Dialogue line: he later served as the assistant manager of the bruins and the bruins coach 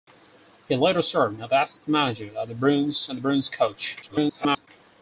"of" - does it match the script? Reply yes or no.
yes